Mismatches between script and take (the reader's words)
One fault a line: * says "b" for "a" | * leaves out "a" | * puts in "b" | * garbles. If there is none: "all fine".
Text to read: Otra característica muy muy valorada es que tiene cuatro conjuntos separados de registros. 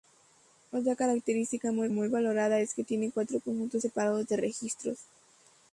all fine